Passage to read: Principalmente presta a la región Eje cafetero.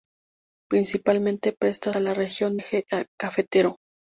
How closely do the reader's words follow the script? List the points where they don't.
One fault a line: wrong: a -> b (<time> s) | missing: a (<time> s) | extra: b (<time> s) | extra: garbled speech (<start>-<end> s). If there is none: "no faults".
no faults